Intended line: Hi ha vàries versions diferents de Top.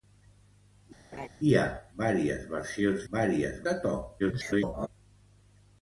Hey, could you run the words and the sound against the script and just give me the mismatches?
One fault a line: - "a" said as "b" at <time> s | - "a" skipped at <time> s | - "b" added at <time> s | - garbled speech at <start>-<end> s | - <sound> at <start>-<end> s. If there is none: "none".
- laugh at 1.1-1.3 s
- "diferents" said as "vàries" at 3.1 s
- garbled speech at 4.2-4.9 s